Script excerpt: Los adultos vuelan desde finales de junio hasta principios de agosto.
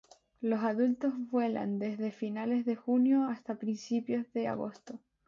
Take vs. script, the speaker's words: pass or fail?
pass